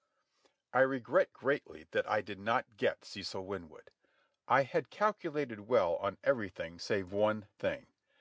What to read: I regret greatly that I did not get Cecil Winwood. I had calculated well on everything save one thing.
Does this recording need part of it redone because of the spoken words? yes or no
no